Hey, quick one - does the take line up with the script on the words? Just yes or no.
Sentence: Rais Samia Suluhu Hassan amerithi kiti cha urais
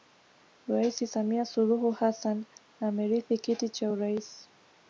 yes